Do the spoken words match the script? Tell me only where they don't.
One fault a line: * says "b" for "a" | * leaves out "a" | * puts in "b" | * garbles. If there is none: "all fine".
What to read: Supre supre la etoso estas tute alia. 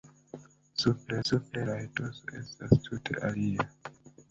all fine